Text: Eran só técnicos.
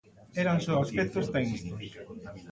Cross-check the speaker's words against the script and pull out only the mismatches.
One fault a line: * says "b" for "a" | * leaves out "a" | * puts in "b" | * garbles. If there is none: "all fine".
* puts in "aspectos"